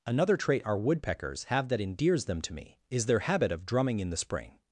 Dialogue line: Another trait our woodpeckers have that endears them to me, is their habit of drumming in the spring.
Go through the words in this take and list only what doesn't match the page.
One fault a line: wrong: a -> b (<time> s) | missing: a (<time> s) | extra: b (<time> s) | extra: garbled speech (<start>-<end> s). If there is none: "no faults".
no faults